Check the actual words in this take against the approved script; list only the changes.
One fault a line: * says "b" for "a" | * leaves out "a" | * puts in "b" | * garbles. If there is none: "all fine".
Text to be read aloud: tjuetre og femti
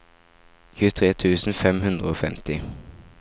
* puts in "tusen fem hundre"